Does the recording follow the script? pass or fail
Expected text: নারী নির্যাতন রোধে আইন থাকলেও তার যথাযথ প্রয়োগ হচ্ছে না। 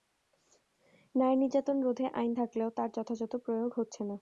pass